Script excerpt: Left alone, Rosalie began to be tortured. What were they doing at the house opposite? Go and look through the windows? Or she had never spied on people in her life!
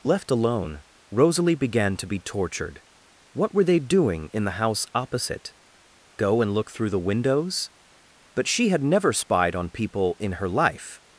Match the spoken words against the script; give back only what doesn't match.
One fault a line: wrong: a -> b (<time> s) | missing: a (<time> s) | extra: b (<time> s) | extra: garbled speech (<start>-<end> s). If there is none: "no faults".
wrong: at -> in (4.3 s)
wrong: Or -> But (8.3 s)